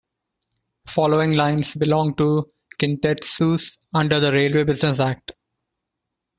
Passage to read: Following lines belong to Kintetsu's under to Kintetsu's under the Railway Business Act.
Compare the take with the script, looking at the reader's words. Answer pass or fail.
fail